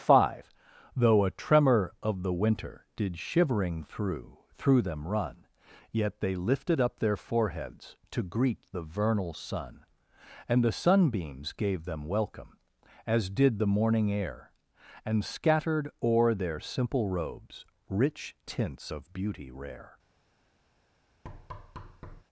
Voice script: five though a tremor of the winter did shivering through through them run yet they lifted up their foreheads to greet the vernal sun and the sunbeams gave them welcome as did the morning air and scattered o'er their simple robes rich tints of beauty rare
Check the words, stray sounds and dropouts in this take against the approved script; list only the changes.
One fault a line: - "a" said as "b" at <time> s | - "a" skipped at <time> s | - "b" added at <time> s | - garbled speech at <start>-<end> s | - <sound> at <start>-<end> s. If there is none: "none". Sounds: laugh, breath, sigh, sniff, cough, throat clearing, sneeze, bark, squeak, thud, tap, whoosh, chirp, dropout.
- thud at 21.2-22.2 s